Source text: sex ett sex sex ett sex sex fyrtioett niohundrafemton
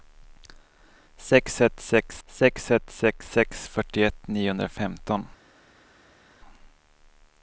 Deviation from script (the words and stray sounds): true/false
false